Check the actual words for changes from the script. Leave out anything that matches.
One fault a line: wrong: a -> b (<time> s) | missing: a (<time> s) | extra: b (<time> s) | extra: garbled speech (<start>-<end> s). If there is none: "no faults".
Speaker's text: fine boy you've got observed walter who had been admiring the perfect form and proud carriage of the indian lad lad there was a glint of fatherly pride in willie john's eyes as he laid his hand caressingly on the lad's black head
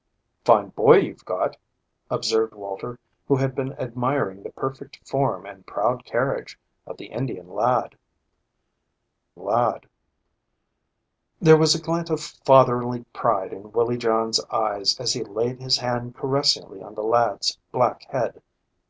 no faults